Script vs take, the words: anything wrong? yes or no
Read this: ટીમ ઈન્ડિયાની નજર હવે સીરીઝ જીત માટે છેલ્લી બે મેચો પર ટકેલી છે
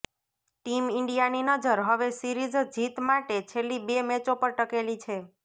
no